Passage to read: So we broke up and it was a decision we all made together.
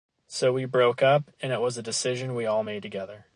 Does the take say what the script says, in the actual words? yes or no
yes